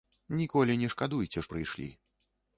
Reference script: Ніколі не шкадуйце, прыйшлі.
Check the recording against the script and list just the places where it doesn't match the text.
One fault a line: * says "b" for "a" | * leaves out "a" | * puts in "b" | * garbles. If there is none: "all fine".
all fine